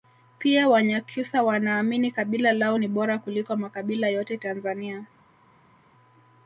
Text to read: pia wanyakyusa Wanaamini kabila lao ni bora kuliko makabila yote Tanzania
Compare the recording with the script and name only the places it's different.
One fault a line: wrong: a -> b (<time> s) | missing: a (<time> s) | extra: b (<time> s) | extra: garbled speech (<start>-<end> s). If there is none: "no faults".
no faults